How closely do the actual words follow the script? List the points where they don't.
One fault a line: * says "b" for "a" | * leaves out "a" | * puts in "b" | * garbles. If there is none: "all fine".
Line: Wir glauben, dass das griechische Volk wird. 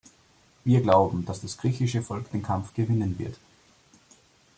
* puts in "den Kampf gewinnen"